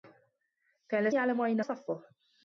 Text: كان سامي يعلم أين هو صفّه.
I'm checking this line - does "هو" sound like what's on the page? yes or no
no